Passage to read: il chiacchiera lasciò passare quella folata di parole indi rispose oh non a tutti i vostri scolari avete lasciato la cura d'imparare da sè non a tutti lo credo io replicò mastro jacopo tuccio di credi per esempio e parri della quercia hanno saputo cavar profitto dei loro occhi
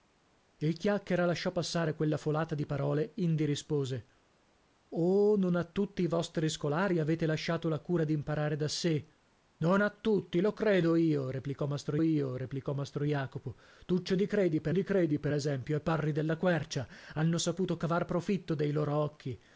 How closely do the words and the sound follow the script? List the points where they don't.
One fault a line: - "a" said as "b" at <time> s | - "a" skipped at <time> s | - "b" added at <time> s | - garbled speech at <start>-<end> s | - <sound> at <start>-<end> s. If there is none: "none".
- "io replicò mastro" added at 12.0 s
- "di credi per" added at 14.7 s